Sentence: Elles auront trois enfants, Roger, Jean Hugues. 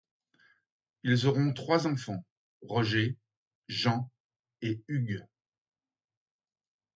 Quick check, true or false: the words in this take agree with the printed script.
false